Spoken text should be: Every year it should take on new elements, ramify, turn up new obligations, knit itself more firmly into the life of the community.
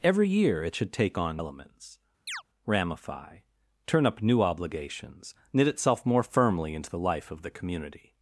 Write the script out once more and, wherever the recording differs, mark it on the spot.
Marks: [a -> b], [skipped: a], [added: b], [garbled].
Every year it should take on [skipped: new] elements, ramify, turn up new obligations, knit itself more firmly into the life of the community.